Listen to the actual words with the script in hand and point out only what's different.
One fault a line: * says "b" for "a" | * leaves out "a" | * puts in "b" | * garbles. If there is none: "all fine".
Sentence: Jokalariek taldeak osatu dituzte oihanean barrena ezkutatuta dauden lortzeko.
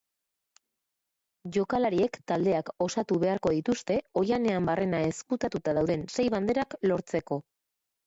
* puts in "beharko"
* puts in "sei banderak"